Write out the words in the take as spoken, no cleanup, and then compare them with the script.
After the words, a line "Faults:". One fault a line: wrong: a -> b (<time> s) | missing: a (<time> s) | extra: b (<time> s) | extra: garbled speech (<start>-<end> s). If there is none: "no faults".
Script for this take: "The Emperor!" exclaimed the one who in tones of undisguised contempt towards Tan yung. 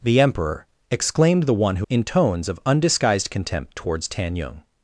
"The Emperor!" exclaimed the one who in tones of undisguised contempt towards Tan yung.
Faults:
no faults